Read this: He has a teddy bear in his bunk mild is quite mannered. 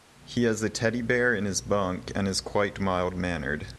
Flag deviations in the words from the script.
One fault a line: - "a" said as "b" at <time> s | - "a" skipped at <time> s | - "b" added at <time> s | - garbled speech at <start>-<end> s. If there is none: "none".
- "mild" said as "and" at 2.1 s
- "mild" added at 2.8 s